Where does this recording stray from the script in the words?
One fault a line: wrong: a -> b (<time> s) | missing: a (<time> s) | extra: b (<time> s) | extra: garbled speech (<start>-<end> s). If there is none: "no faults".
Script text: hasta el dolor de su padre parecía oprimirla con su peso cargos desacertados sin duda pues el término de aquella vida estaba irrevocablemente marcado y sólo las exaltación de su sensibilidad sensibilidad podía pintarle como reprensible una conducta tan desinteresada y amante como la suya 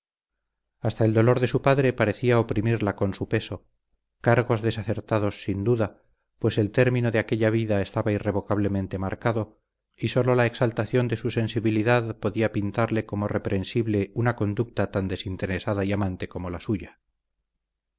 wrong: las -> la (10.3 s)
missing: sensibilidad (12.2 s)